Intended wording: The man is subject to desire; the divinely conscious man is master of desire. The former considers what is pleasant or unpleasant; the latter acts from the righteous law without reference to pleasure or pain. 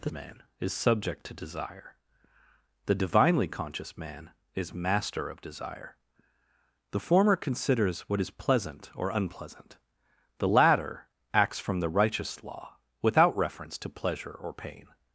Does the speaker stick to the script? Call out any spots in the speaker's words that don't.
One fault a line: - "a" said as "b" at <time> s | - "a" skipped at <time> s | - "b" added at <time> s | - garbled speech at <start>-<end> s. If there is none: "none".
none